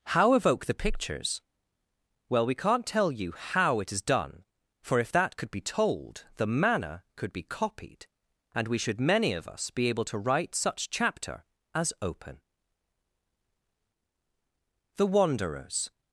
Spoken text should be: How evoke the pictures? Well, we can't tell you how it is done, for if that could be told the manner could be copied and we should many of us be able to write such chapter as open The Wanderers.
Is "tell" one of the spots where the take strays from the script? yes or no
no